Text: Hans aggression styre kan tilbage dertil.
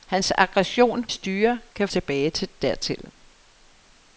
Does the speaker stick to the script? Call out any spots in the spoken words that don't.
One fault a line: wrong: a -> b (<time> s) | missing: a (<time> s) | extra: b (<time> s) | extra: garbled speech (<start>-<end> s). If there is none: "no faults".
no faults